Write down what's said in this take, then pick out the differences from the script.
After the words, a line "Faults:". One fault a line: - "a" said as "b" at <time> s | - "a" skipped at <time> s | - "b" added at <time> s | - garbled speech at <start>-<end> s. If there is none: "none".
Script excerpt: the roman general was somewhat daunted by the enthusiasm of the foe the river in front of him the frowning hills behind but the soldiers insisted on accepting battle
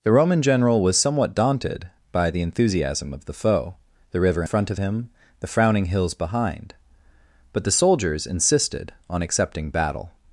the roman general was somewhat daunted by the enthusiasm of the foe the river front of him the frowning hills behind but the soldiers insisted on accepting battle
Faults:
- "in" skipped at 4.4 s